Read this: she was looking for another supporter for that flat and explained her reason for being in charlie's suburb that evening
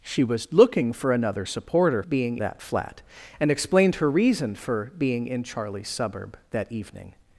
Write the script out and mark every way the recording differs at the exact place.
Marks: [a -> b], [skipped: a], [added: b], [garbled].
she was looking for another supporter [for -> being] that flat and explained her reason for being in charlie's suburb that evening